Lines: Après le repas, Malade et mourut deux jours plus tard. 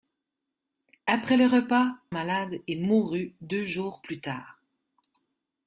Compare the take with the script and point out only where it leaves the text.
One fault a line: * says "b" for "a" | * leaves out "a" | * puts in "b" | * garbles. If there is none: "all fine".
all fine